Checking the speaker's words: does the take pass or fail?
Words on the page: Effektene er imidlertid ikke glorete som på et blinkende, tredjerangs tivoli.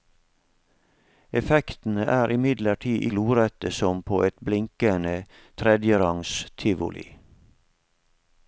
fail